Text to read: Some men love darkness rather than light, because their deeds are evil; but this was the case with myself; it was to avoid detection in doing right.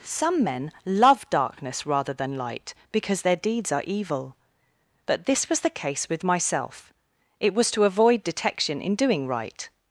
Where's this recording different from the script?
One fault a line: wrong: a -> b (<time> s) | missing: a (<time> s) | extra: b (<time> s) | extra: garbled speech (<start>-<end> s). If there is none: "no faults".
no faults